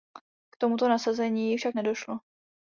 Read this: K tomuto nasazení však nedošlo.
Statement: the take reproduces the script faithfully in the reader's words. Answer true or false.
true